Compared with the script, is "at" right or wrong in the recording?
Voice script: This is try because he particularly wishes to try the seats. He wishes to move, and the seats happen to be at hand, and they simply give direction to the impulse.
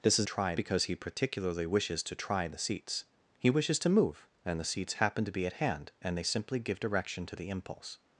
right